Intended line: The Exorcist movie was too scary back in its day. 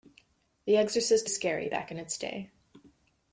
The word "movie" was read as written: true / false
false